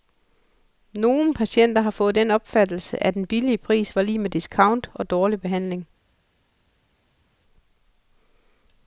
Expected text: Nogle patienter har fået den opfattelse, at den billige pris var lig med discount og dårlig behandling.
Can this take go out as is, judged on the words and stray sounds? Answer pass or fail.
pass